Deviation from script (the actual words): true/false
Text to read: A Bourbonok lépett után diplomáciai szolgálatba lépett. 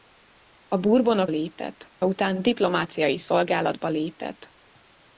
false